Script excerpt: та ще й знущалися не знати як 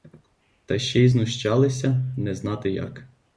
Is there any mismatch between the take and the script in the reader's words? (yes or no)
no